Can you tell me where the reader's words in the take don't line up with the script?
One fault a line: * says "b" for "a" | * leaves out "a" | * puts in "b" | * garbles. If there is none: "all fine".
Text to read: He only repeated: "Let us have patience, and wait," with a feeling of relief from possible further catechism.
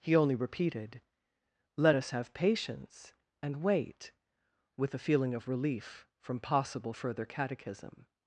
all fine